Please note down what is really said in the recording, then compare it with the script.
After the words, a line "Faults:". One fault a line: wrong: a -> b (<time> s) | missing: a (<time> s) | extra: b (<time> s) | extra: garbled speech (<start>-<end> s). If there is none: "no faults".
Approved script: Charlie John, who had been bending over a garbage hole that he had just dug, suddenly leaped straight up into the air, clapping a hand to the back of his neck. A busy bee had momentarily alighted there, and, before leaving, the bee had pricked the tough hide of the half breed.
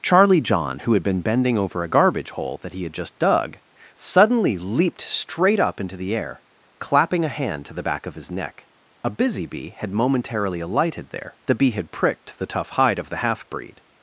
Charlie John, who had been bending over a garbage hole that he had just dug, suddenly leaped straight up into the air, clapping a hand to the back of his neck. A busy bee had momentarily alighted there, the bee had pricked the tough hide of the half breed.
Faults:
missing: and before leaving (11.4 s)